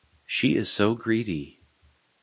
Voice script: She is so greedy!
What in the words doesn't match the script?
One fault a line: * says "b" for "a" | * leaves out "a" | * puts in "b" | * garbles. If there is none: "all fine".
all fine